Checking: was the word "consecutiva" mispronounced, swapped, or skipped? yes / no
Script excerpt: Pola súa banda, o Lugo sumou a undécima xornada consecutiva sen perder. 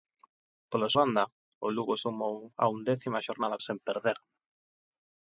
yes